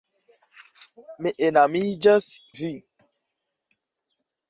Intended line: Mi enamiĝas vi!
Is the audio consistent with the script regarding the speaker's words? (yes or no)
yes